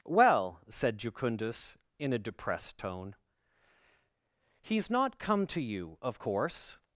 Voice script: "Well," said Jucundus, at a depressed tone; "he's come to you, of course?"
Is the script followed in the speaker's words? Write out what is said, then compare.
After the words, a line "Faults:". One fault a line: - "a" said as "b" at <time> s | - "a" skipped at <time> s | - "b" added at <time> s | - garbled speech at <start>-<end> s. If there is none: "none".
"Well," said Jucundus, in a depressed tone; "he's not come to you, of course?"
Faults:
- "at" said as "in" at 2.0 s
- "not" added at 4.9 s